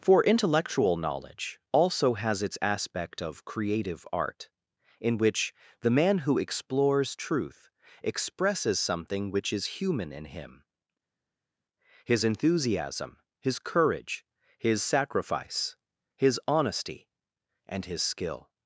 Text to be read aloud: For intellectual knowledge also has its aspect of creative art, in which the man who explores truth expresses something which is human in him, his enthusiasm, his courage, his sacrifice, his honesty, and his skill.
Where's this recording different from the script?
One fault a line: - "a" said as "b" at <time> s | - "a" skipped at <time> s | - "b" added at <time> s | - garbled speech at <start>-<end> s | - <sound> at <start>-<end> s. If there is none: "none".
none